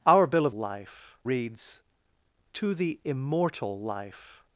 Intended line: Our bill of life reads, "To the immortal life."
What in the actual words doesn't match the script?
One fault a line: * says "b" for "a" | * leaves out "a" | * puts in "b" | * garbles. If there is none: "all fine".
all fine